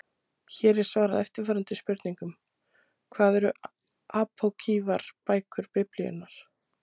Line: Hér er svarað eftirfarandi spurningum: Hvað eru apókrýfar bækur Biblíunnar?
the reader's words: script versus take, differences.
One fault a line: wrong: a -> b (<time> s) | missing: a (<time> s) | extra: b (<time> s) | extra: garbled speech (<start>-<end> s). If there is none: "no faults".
no faults